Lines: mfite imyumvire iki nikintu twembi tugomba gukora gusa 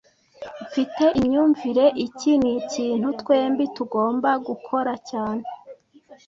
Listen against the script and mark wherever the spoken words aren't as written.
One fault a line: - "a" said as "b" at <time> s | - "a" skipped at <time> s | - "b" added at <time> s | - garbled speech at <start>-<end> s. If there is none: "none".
- "gusa" said as "cyane" at 5.1 s